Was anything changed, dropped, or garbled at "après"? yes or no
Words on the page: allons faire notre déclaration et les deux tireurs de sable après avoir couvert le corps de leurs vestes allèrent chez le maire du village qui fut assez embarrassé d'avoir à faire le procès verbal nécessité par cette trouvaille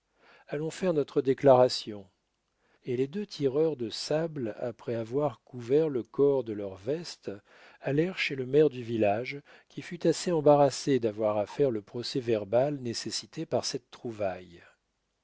no